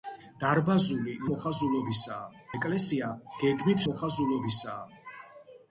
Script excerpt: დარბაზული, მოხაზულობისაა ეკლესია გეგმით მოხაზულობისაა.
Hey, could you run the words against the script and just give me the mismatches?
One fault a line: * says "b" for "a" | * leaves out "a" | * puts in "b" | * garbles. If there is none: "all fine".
all fine